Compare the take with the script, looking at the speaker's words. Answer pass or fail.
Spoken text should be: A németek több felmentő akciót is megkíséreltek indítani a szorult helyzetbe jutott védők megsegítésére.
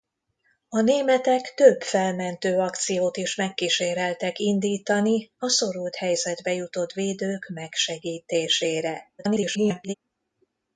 fail